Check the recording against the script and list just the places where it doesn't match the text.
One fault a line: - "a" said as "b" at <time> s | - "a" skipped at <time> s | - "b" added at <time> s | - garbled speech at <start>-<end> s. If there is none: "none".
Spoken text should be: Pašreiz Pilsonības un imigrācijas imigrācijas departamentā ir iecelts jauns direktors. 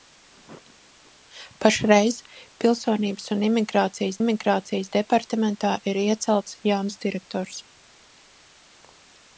none